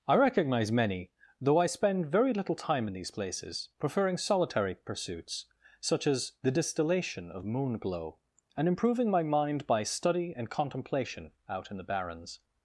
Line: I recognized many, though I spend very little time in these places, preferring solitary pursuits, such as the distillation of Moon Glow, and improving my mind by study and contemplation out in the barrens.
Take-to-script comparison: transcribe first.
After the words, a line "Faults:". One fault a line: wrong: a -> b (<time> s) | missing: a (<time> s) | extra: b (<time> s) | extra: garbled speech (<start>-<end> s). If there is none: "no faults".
I recognize many, though I spend very little time in these places, preferring solitary pursuits, such as the distillation of Moon Glow, and improving my mind by study and contemplation out in the barrens.
Faults:
wrong: recognized -> recognize (0.1 s)